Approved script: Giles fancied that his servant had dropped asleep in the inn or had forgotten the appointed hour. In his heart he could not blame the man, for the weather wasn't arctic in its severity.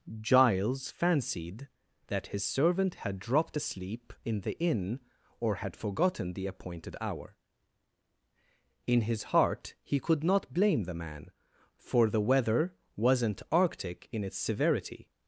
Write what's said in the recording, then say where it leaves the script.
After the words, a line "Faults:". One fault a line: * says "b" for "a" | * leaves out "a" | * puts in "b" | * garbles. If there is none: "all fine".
Giles fancied that his servant had dropped asleep in the inn or had forgotten the appointed hour. In his heart he could not blame the man, for the weather wasn't arctic in its severity.
Faults:
all fine